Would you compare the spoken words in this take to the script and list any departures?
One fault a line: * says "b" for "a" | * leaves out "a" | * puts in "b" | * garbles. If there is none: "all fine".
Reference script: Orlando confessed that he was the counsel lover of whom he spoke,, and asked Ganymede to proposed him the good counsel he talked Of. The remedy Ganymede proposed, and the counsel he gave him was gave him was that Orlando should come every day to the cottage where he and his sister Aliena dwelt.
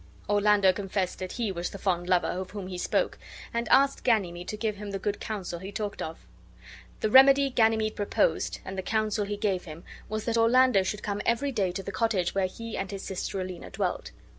* says "fond" for "counsel"
* says "give" for "proposed"
* leaves out "gave him was"